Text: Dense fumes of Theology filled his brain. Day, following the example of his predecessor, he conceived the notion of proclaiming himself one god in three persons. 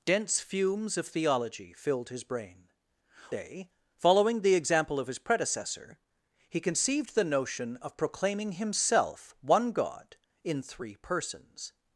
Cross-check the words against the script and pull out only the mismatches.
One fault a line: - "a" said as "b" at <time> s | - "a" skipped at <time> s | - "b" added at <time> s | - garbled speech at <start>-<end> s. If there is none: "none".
none